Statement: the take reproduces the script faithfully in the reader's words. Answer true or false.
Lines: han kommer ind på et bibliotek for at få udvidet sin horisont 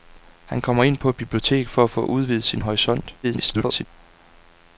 false